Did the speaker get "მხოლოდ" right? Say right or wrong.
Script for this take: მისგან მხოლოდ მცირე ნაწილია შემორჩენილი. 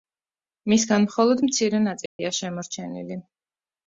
right